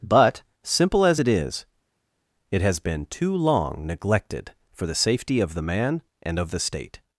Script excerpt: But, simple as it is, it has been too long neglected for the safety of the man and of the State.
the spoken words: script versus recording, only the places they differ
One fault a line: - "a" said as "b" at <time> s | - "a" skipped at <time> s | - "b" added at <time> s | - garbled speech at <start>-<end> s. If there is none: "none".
none